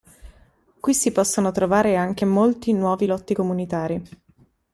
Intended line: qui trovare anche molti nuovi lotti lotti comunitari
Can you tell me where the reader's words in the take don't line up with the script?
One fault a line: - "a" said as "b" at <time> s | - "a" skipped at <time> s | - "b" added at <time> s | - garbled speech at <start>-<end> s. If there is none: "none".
- "si possono" added at 0.9 s
- "lotti" skipped at 3.3 s